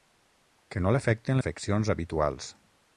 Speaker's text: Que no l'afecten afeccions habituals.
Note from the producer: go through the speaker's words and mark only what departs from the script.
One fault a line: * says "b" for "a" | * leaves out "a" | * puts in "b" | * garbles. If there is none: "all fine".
all fine